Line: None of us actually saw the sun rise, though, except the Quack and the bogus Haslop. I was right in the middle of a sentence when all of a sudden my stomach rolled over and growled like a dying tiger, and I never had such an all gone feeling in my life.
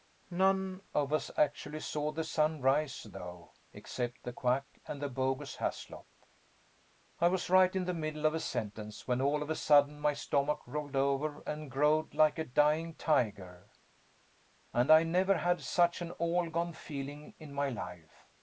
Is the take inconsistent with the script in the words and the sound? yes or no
no